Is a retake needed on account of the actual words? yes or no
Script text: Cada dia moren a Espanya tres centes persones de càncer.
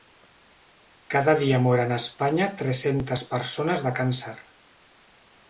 no